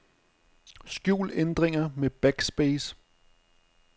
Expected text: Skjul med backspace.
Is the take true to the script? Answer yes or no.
no